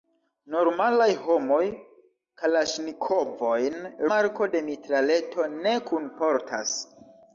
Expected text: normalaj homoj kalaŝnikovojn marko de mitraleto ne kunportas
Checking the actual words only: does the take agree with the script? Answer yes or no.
yes